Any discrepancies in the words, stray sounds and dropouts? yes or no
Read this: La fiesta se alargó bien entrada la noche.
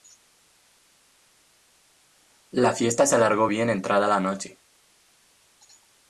no